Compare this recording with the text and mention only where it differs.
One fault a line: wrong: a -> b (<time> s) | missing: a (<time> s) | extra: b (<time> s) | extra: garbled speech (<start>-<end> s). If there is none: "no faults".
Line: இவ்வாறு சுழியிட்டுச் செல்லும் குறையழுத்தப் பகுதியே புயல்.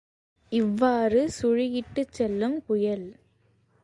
missing: குறையழுத்தப் பகுதியே (2.6 s)